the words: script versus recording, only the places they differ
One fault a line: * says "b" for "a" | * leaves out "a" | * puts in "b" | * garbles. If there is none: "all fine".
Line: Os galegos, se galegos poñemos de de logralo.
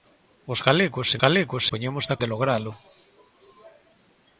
all fine